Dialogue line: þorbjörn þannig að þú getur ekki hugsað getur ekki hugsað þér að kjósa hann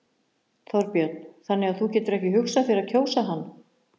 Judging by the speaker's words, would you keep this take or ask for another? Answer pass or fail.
fail